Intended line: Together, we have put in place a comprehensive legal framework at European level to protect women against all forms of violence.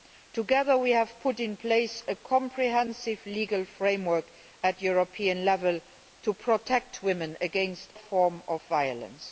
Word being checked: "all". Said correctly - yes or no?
no